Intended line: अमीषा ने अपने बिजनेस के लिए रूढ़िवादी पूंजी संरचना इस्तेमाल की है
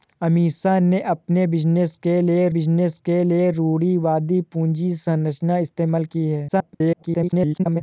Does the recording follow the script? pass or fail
fail